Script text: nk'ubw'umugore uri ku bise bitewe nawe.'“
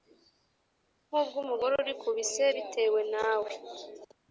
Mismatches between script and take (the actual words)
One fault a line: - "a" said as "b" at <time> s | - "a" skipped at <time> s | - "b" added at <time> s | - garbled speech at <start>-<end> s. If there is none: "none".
none